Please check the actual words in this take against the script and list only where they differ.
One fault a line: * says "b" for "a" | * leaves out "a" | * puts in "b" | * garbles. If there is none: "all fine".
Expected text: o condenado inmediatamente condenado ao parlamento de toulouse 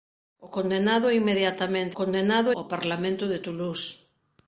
all fine